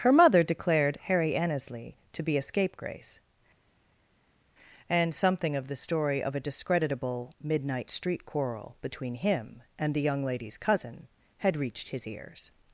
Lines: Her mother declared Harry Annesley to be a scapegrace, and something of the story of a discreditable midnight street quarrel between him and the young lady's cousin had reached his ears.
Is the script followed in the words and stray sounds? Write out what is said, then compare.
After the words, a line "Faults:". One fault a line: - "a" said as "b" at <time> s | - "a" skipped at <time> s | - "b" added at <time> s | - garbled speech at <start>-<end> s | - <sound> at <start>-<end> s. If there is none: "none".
Her mother declared Harry Annesley to be a scapegrace, and something of the story of a discreditable midnight street quarrel between him and the young lady's cousin had reached his ears.
Faults:
none